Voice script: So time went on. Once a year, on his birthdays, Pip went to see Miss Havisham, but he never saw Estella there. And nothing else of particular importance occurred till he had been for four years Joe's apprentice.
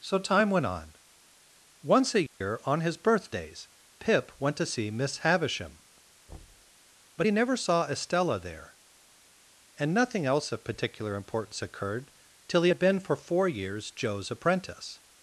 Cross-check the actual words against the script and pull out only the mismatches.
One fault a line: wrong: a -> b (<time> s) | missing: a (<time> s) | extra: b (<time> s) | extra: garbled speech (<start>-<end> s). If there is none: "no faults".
no faults